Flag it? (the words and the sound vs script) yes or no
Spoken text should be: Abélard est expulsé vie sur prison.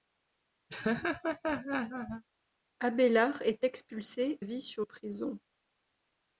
yes